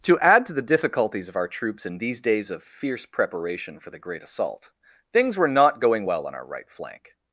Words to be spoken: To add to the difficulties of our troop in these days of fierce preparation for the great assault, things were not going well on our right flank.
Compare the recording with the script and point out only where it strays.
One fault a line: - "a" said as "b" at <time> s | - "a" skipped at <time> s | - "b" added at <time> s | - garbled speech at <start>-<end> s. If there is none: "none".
- "troop" said as "troops" at 1.5 s